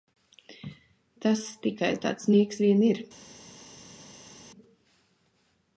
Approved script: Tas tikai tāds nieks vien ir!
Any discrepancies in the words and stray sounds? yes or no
no